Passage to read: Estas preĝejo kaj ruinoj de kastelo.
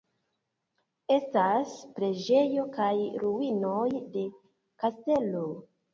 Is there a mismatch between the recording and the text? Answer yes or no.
no